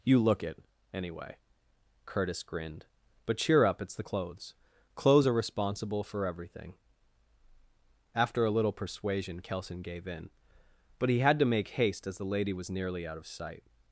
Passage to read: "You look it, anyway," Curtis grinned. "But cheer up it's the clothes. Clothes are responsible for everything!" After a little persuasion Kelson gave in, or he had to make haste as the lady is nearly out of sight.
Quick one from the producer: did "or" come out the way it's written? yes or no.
no